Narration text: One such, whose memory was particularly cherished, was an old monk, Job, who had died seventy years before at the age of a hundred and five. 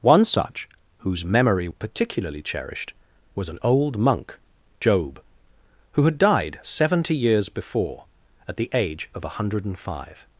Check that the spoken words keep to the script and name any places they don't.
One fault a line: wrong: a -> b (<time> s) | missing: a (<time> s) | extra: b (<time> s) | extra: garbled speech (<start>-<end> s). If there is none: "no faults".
missing: was (1.7 s)